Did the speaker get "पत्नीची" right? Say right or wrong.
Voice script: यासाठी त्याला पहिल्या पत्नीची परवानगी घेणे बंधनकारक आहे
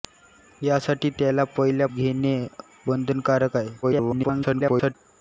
wrong